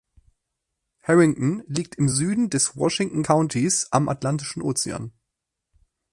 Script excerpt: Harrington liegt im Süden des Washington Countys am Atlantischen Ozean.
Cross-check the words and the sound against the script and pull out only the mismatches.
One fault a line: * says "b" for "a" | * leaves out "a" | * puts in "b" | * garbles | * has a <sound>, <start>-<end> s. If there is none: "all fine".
all fine